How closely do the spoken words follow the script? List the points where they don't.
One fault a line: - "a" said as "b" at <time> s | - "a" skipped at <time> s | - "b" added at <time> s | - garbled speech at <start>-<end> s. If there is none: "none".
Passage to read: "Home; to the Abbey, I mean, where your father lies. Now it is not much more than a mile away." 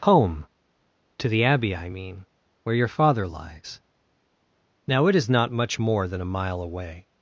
none